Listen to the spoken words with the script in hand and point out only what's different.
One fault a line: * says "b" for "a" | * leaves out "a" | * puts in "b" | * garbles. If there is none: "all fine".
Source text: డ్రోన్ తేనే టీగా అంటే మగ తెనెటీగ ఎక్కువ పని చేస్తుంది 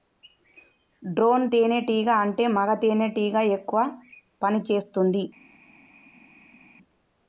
all fine